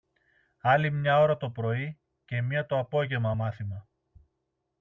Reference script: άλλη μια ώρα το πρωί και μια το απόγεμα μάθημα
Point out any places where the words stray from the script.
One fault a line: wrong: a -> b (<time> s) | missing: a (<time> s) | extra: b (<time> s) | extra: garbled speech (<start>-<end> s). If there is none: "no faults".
no faults